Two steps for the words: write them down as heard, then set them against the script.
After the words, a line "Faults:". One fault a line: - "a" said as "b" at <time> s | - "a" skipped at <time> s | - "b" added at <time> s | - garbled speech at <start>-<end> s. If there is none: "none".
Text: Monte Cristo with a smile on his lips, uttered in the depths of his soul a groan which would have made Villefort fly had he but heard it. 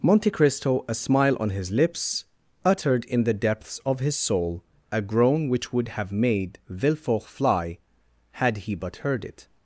Monte Cristo a smile on his lips, uttered in the depths of his soul a groan which would have made Villefort fly had he but heard it.
Faults:
- "with" skipped at 0.8 s